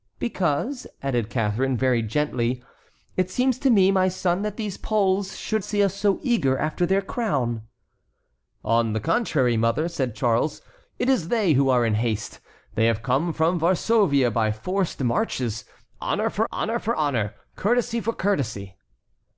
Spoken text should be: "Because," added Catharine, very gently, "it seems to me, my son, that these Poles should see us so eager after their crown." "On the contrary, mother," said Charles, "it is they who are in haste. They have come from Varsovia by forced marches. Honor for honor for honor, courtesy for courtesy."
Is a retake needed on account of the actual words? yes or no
no